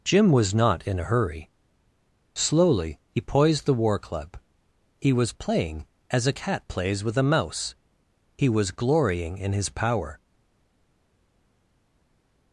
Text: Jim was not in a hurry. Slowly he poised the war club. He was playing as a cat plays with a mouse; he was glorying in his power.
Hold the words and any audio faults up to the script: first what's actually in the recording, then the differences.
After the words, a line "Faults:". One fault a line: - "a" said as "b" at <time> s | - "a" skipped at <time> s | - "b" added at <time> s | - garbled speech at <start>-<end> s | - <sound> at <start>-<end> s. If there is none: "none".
Jim was not in a hurry. Slowly he poised the war club. He was playing as a cat plays with a mouse; he was glorying in his power.
Faults:
none